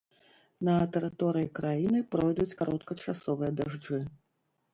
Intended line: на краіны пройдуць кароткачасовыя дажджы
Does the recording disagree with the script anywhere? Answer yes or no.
yes